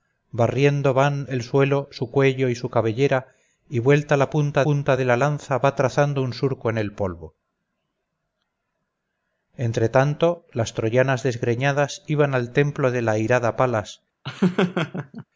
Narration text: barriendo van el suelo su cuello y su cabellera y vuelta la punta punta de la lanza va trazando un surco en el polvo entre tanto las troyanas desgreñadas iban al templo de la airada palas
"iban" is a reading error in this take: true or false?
false